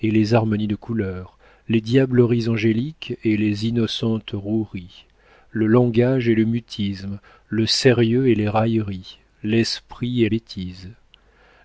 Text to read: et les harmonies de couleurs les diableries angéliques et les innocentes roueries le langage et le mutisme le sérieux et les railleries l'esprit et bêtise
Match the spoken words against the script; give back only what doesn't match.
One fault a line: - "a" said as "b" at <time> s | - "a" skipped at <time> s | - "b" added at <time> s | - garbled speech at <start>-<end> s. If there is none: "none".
none